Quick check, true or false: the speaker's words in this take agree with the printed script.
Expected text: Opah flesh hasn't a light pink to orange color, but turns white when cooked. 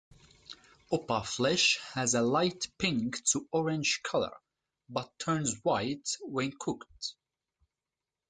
false